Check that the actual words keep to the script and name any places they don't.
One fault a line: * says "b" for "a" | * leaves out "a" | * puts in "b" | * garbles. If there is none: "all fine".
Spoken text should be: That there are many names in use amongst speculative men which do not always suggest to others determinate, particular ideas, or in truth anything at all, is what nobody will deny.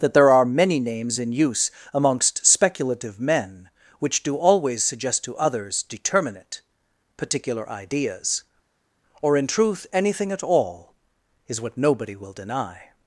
* leaves out "not"